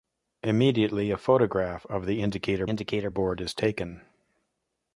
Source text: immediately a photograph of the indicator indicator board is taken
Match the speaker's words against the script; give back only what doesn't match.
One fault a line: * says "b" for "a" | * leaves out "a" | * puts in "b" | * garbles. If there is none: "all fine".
all fine